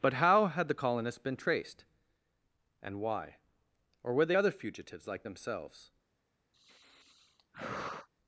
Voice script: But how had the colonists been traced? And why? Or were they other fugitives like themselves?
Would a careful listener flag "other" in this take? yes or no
no